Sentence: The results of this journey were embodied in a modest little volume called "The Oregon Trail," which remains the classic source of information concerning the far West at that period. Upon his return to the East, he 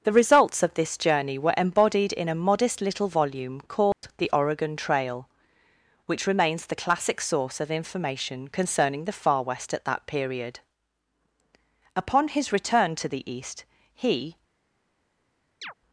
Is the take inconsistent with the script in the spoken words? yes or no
no